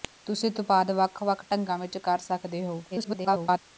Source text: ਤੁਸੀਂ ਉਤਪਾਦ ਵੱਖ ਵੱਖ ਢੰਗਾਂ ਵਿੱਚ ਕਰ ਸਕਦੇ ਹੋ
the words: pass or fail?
fail